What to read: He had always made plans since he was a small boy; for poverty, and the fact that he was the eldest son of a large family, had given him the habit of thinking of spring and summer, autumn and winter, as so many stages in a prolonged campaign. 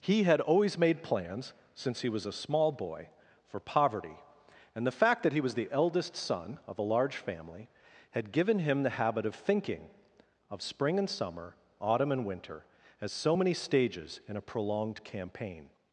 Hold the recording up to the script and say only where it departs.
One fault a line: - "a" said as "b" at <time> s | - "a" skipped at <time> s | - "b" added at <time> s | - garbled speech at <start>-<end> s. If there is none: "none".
none